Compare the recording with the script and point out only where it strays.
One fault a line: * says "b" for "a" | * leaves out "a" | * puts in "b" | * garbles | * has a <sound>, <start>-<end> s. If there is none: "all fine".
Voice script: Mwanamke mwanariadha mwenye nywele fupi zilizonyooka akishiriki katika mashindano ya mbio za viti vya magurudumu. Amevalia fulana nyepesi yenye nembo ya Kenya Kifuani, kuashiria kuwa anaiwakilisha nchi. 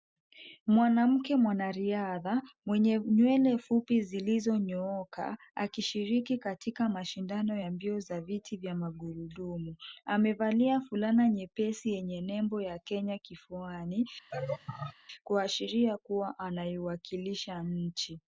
* has a laugh, 14.3-14.9 s